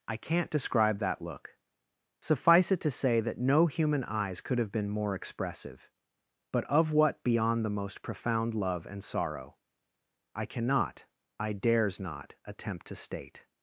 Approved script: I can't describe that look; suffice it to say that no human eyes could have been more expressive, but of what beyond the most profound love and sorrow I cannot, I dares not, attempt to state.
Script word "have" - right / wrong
right